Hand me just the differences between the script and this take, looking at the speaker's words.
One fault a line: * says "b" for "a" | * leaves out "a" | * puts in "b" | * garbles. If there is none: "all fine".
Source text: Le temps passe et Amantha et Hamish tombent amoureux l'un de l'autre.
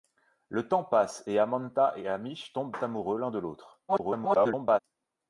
* garbles